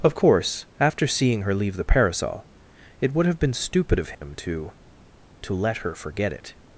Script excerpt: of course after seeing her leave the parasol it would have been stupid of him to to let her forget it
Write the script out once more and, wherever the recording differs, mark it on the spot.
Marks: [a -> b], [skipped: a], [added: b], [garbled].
of course after seeing her leave the parasol it would have been stupid of him to to let her forget it